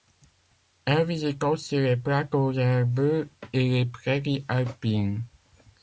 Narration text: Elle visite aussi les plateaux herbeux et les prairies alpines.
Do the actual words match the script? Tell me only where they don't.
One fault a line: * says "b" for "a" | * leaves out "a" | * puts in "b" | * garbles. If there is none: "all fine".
all fine